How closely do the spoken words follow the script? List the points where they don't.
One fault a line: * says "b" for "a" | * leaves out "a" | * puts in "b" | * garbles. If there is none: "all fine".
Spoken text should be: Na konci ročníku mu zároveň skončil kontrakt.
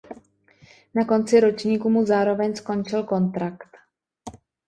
all fine